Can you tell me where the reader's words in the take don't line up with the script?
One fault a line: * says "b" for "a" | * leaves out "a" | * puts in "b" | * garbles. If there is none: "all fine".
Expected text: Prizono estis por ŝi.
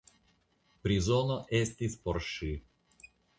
all fine